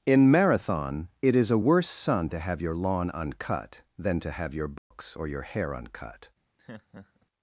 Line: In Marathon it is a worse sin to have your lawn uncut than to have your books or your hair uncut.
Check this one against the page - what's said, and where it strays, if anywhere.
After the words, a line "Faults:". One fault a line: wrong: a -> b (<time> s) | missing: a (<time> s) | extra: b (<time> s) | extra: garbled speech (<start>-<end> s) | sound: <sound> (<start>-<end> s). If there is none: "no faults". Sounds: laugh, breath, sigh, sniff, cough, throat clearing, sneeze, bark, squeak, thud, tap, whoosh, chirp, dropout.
In Marathon it is a worse sun to have your lawn uncut than to have your books or your hair uncut.
Faults:
wrong: sin -> sun (1.9 s)
sound: dropout (4.8-4.9 s)
sound: laugh (6.6-7.3 s)